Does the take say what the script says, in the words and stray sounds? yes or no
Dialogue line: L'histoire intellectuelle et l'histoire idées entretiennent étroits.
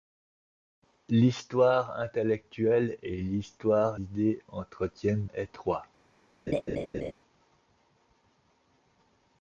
no